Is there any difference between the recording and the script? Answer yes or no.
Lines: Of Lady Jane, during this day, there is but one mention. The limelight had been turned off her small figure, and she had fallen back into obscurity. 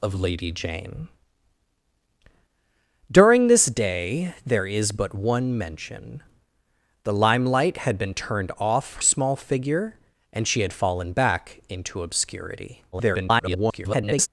yes